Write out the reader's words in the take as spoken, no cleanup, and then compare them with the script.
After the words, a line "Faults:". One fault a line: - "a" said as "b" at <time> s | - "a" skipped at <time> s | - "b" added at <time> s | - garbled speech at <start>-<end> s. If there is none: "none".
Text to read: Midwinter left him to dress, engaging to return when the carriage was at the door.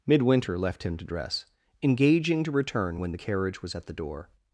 Midwinter left him to dress, engaging to return when the carriage was at the door.
Faults:
none